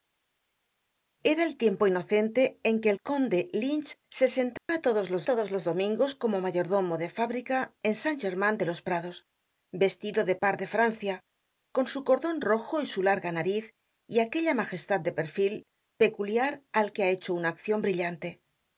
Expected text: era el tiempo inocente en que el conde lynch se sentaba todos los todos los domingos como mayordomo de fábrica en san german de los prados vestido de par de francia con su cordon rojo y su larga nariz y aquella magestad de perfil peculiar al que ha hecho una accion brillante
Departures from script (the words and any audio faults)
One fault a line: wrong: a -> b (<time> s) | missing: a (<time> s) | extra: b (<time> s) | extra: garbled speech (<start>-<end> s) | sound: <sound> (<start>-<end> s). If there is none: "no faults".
sound: dropout (4.6-4.7 s)